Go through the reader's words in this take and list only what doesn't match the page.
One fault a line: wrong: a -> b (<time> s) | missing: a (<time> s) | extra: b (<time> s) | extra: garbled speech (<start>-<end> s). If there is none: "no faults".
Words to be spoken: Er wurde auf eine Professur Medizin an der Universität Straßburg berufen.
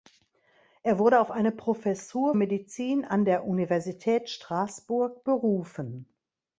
no faults